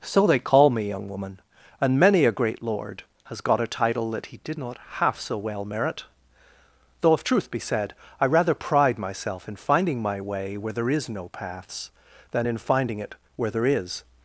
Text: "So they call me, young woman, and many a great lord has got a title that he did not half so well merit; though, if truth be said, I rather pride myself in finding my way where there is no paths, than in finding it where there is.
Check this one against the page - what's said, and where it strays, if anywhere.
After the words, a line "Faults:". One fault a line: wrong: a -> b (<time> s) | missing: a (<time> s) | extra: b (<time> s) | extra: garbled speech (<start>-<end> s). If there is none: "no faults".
"So they call me, young woman, and many a great lord has got a title that he did not half so well merit; though, if truth be said, I rather pride myself in finding my way where there is no paths, than in finding it where there is.
Faults:
no faults